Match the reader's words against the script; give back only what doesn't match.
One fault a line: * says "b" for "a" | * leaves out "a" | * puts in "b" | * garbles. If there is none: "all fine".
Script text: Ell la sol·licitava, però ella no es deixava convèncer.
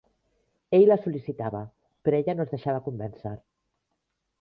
all fine